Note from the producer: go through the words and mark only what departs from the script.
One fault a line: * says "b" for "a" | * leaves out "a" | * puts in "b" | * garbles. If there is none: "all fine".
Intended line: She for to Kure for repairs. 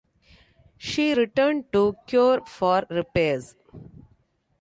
* says "returned" for "for"